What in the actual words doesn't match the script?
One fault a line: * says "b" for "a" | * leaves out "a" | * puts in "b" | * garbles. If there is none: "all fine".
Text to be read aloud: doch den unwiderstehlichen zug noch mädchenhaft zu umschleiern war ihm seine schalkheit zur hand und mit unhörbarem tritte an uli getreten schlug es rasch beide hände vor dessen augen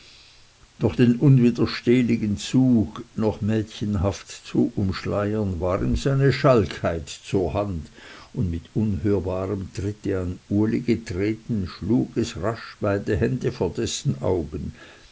all fine